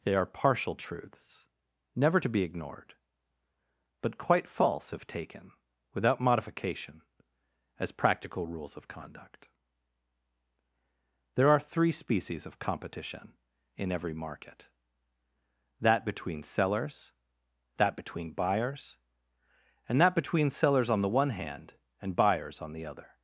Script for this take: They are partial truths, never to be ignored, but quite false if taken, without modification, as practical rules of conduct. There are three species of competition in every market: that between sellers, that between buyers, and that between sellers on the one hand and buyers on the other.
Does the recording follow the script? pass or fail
pass